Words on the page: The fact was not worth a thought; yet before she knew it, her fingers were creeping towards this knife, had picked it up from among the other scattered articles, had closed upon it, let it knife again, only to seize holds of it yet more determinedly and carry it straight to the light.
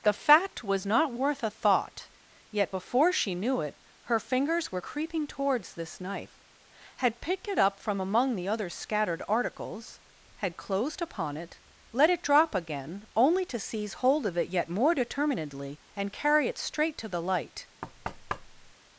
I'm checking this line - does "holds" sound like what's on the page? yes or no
no